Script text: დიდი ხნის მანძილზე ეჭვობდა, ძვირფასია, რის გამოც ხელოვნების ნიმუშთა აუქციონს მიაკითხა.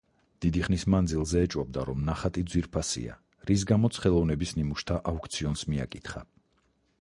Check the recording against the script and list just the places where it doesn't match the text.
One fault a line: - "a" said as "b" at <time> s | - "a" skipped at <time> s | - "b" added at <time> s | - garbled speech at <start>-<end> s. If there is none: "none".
- "რომ ნახატი" added at 1.9 s